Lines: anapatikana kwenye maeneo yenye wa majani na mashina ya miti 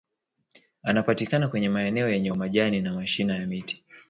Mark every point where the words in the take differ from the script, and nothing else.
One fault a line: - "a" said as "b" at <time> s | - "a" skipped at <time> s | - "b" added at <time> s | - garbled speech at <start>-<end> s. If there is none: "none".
none